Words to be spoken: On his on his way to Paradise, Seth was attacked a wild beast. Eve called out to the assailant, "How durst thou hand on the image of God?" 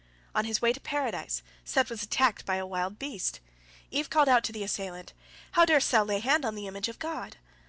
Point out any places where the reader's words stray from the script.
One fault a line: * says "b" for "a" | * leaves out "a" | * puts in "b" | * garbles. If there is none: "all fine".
* leaves out "on his"
* puts in "by"
* puts in "lay"